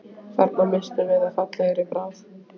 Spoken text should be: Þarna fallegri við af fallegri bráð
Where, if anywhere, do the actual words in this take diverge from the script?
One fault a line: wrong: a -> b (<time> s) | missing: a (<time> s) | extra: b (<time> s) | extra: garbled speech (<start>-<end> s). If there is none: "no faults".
wrong: fallegri -> misstum (0.7 s)